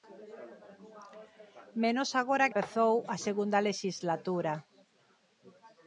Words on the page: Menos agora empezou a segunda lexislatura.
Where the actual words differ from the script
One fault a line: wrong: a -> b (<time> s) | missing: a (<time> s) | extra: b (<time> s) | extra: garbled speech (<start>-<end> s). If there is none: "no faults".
no faults